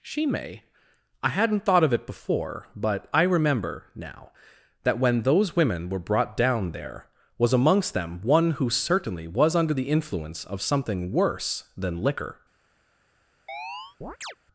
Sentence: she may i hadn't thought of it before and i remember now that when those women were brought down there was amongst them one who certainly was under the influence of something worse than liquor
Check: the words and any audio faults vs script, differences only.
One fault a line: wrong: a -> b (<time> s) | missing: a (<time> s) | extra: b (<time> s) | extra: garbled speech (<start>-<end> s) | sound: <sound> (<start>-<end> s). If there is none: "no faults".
wrong: and -> but (2.8 s)
sound: chirp (13.5-14.4 s)